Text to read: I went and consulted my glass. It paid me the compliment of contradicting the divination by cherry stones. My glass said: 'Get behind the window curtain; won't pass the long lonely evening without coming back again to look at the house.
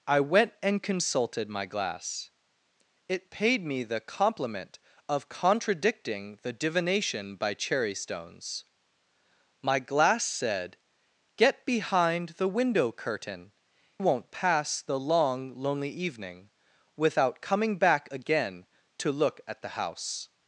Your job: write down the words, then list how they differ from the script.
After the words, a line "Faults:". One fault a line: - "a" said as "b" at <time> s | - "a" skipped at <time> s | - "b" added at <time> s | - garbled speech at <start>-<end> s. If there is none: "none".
I went and consulted my glass. It paid me the compliment of contradicting the divination by cherry stones. My glass said: 'Get behind the window curtain; won't pass the long lonely evening without coming back again to look at the house.
Faults:
none